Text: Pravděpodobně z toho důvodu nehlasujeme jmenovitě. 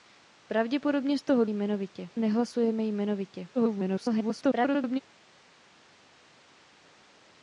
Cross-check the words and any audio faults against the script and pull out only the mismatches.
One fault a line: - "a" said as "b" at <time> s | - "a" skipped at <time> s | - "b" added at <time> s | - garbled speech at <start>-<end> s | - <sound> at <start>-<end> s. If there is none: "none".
- "důvodu" said as "jmenovitě" at 1.5 s
- garbled speech at 3.5-5.0 s